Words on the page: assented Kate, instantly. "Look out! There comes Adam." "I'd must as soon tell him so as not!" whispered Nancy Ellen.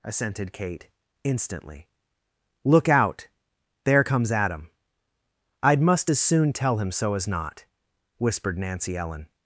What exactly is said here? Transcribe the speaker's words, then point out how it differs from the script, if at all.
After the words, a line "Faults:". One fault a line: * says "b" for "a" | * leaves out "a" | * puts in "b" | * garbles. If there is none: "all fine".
assented Kate, instantly. "Look out! There comes Adam." "I'd must as soon tell him so as not!" whispered Nancy Ellen.
Faults:
all fine